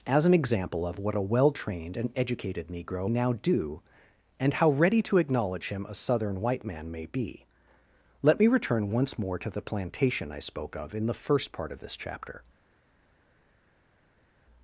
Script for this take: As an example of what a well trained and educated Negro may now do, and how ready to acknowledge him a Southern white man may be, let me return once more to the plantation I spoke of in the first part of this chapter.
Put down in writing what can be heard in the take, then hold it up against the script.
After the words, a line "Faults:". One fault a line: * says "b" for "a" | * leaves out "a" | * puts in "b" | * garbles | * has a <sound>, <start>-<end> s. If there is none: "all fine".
As an example of what a well trained and educated Negro now do, and how ready to acknowledge him a Southern white man may be, let me return once more to the plantation I spoke of in the first part of this chapter.
Faults:
* leaves out "may"